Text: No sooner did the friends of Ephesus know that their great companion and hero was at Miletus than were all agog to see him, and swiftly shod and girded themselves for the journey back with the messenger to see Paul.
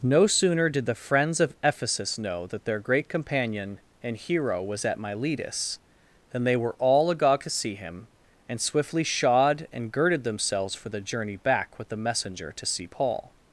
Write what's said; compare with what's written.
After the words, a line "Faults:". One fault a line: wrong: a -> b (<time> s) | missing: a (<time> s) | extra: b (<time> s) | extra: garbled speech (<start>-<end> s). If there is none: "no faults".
No sooner did the friends of Ephesus know that their great companion and hero was at Miletus than they were all agog to see him, and swiftly shod and girded themselves for the journey back with the messenger to see Paul.
Faults:
extra: they (6.4 s)